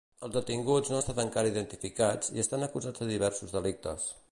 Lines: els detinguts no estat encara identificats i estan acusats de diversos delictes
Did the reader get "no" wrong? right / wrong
right